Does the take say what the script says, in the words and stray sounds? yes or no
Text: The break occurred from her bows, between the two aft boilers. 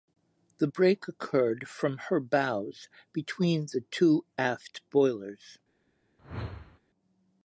no